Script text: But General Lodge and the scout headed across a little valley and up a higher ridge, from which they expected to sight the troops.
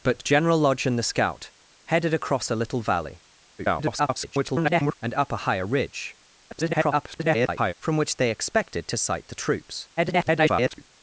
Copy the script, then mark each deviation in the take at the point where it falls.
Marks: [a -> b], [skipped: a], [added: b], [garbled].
But General Lodge and the scout headed across a little valley [garbled] and up a higher ridge, [garbled] from which they expected to sight the troops. [garbled]